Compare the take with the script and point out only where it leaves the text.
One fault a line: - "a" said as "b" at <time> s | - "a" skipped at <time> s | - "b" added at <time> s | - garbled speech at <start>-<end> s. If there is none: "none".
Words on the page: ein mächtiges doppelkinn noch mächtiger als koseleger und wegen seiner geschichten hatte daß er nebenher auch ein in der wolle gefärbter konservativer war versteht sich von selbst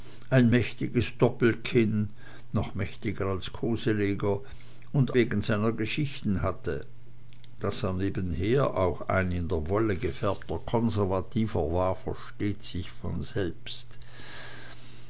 none